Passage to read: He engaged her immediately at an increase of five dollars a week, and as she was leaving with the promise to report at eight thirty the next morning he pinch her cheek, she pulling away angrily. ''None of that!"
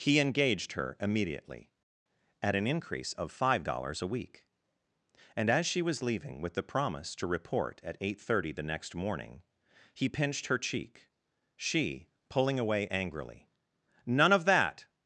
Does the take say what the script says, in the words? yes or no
no